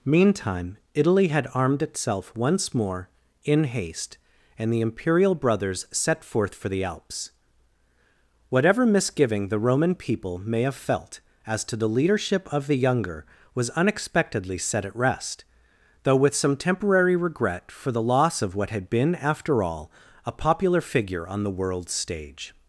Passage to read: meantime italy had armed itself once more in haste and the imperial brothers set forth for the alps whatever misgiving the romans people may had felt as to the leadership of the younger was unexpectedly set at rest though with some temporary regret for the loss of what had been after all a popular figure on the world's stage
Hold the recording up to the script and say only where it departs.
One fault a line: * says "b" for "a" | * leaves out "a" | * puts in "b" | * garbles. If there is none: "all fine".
* says "roman" for "romans"
* says "have" for "had"